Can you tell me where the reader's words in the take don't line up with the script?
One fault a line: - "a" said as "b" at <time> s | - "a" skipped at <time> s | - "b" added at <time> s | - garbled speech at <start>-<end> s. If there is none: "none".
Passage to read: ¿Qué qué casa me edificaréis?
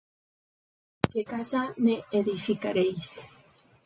- "qué" skipped at 1.2 s